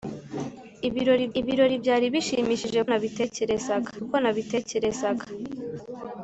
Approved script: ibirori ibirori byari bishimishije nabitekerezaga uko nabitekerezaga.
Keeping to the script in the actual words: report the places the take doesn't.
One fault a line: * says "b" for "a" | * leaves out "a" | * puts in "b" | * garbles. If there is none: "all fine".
all fine